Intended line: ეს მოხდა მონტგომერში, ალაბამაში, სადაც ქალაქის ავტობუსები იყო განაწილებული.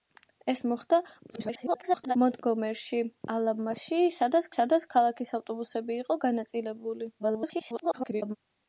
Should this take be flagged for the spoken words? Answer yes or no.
yes